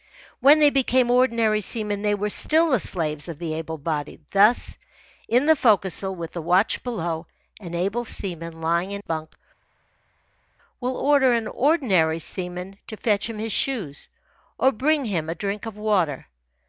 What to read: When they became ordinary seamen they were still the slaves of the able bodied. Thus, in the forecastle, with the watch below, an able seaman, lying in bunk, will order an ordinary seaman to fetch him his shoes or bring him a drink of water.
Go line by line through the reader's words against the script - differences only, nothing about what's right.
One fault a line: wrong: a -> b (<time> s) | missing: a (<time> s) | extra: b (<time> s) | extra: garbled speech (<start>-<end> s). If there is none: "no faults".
no faults